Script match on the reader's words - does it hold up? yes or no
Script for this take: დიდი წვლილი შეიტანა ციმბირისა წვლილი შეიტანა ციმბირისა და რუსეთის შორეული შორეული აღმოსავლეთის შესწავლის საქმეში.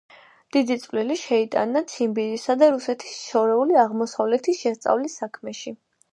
no